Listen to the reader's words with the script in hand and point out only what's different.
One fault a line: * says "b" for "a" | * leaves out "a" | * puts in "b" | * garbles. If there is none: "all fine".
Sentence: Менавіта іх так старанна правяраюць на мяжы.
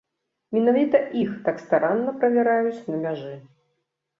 all fine